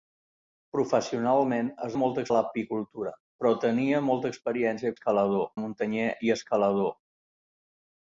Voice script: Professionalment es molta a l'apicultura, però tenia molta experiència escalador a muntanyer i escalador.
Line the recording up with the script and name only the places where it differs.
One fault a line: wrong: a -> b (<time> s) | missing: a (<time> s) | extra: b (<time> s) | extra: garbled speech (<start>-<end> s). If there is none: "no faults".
no faults